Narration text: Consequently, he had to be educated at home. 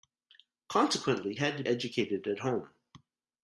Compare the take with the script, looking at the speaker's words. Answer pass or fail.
fail